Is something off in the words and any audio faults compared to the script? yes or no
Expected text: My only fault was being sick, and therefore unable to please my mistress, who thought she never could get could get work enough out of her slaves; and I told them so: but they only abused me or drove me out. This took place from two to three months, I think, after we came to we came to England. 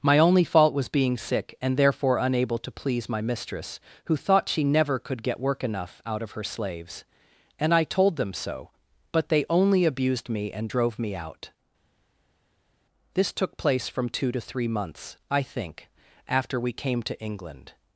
yes